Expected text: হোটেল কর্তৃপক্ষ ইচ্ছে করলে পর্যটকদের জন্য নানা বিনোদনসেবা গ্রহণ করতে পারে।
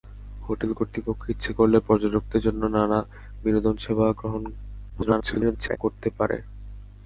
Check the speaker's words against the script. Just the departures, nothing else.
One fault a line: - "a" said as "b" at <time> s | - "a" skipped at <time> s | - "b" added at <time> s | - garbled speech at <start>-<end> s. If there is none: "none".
- garbled speech at 4.9-5.8 s